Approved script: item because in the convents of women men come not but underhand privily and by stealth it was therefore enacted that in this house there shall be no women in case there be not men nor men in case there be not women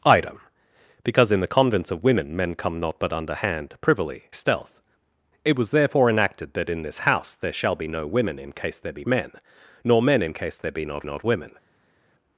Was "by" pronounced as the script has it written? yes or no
no